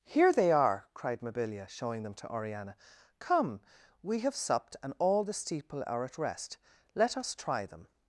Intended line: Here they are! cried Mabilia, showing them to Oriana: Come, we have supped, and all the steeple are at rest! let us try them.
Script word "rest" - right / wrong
right